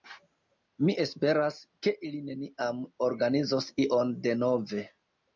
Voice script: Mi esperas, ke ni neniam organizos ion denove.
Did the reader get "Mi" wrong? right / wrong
right